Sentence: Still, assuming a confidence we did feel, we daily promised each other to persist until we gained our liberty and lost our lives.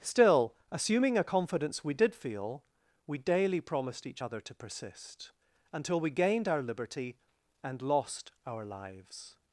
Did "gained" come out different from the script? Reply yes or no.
no